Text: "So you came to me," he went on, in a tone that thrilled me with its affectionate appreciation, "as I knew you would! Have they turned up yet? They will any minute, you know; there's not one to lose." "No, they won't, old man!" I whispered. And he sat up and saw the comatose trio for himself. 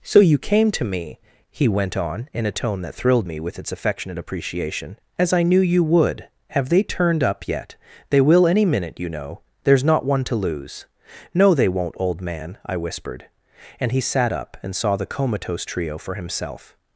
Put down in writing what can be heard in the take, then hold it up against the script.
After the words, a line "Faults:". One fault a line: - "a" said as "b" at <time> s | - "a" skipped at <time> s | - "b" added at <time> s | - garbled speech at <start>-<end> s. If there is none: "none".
"So you came to me," he went on, in a tone that thrilled me with its affectionate appreciation, "as I knew you would! Have they turned up yet? They will any minute, you know; there's not one to lose." "No, they won't, old man!" I whispered. And he sat up and saw the comatose trio for himself.
Faults:
none